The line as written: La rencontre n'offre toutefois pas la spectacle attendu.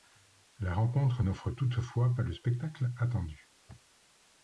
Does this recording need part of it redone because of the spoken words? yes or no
yes